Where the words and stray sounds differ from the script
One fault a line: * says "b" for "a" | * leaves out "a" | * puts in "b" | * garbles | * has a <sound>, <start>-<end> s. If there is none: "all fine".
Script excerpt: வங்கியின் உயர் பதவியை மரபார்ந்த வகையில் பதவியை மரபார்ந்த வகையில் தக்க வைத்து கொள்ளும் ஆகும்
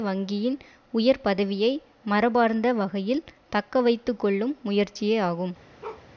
* leaves out "பதவியை மரபார்ந்த வகையில்"
* puts in "முயற்சியே"
* has a bark, 5.8-6.1 s